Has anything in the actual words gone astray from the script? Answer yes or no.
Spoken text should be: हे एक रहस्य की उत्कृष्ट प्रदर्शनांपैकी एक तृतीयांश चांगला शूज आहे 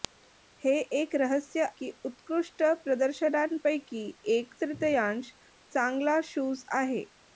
no